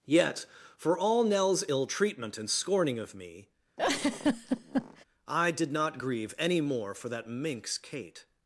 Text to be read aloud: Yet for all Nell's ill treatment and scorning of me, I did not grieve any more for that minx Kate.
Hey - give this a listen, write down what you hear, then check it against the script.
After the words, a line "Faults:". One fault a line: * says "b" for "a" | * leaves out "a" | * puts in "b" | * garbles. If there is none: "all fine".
Yet for all Nell's ill treatment and scorning of me, I did not grieve any more for that minx Kate.
Faults:
all fine